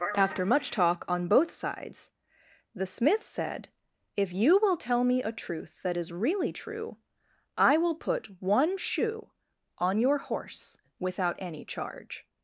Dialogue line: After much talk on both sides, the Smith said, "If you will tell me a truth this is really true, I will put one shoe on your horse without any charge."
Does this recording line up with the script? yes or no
no